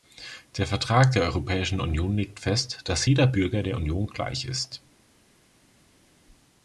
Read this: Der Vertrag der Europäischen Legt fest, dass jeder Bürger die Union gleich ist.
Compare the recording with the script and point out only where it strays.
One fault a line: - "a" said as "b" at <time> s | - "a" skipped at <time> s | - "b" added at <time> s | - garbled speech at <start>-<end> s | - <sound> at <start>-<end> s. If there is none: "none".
- "Union" added at 1.8 s
- "die" said as "der" at 3.6 s